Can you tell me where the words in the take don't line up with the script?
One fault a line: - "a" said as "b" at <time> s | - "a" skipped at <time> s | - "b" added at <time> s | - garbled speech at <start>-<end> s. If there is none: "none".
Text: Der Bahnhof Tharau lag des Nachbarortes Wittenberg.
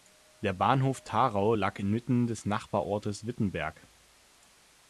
- "inmitten" added at 1.8 s